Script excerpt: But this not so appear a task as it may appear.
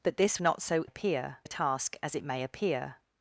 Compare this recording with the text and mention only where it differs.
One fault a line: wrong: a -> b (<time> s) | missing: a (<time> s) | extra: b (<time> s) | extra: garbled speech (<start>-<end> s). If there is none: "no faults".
no faults